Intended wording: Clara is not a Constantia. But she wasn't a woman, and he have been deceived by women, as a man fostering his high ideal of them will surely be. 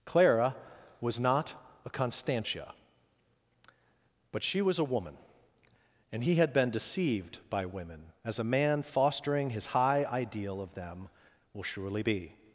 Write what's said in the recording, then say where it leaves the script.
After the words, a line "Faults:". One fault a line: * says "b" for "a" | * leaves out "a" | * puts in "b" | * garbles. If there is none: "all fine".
Clara was not a Constantia. But she was a woman, and he had been deceived by women, as a man fostering his high ideal of them will surely be.
Faults:
* says "was" for "is"
* says "was" for "wasn't"
* says "had" for "have"